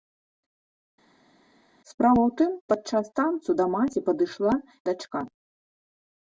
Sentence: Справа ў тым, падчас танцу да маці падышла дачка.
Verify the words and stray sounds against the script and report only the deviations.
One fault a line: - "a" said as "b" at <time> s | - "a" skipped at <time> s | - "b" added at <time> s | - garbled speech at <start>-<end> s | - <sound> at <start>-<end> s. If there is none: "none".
none